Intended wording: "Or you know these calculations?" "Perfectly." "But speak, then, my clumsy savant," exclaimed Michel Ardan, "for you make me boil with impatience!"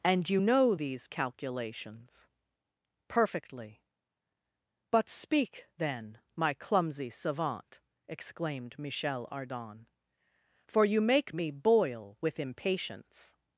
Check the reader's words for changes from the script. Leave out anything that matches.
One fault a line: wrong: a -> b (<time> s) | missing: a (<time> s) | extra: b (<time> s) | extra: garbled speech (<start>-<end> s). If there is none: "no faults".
wrong: Or -> And (0.0 s)